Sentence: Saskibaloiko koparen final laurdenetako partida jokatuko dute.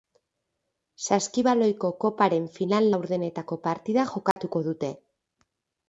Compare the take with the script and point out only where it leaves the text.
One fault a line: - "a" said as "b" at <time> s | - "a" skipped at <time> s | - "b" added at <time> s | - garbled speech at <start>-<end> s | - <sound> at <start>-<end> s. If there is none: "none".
- dropout at 4.3-4.4 s